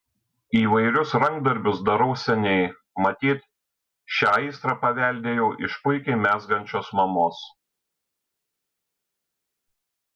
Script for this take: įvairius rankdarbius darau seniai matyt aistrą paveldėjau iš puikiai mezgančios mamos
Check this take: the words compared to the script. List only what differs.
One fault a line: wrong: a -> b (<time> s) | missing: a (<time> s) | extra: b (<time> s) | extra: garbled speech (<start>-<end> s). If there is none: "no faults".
extra: šią (4.2 s)